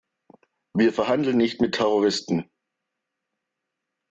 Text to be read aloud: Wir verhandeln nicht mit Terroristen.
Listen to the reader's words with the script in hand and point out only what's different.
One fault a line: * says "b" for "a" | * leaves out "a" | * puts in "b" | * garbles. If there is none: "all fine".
all fine